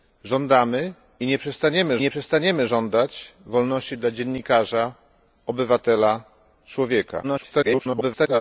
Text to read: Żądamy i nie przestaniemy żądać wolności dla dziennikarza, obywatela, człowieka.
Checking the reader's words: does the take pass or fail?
fail